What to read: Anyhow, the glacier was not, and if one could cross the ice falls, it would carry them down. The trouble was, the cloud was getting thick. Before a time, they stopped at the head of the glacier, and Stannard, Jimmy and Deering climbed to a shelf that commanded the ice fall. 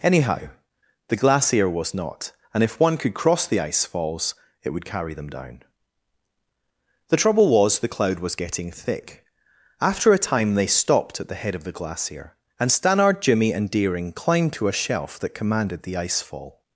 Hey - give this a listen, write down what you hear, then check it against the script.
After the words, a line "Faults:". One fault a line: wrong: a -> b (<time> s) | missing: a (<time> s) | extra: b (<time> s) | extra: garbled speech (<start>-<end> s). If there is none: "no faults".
Anyhow, the glacier was not, and if one could cross the ice falls, it would carry them down. The trouble was, the cloud was getting thick. After a time, they stopped at the head of the glacier, and Stannard, Jimmy and Deering climbed to a shelf that commanded the ice fall.
Faults:
wrong: Before -> After (9.8 s)